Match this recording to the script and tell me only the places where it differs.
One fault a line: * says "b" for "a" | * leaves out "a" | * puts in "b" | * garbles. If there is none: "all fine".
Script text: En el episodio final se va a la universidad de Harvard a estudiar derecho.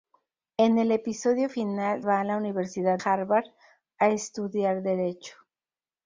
* leaves out "se"
* leaves out "de"